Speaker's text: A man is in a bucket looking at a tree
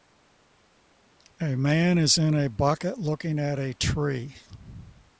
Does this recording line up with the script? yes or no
yes